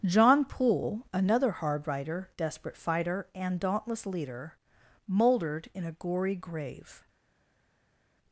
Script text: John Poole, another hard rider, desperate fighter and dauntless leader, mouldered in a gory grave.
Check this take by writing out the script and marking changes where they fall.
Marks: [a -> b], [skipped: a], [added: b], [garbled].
John Poole, another hard rider, desperate fighter and dauntless leader, mouldered in a gory grave.